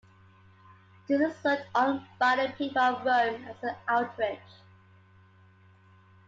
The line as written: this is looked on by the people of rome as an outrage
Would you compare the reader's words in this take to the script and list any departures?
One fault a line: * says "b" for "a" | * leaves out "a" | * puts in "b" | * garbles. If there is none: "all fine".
all fine